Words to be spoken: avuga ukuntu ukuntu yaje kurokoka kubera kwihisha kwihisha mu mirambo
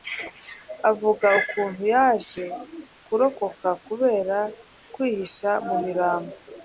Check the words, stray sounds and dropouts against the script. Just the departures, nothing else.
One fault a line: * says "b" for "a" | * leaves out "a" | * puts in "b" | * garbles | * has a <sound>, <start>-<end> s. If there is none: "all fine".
* leaves out "ukuntu"
* leaves out "kwihisha"